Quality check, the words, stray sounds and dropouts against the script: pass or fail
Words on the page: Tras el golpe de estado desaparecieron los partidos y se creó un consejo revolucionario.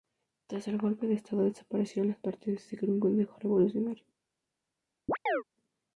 fail